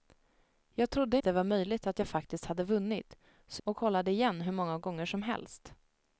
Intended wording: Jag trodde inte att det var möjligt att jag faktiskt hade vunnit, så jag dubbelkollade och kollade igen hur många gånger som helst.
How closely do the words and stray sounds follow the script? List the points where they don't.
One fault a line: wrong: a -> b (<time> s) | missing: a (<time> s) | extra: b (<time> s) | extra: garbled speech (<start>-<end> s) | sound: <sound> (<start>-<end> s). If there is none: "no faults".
missing: inte (1.2 s)
missing: jag dubbelkollade (3.6 s)